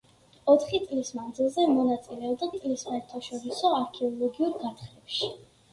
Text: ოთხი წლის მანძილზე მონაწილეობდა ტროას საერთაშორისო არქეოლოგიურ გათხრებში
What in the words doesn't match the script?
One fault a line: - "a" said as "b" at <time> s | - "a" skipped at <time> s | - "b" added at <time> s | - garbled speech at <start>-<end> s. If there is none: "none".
- "ტროას" said as "წლის" at 2.6 s